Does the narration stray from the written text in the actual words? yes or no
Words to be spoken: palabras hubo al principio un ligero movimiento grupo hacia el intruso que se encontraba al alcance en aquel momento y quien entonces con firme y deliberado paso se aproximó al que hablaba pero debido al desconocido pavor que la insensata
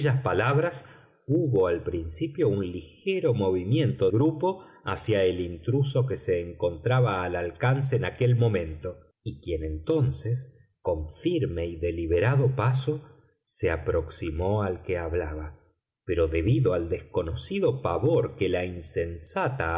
no